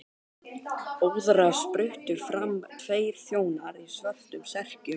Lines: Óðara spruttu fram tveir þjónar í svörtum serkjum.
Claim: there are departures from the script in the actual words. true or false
false